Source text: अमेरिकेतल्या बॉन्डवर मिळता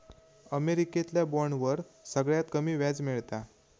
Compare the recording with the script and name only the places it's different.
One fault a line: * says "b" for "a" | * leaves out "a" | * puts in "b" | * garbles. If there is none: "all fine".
* puts in "सगळ्यात कमी व्याज"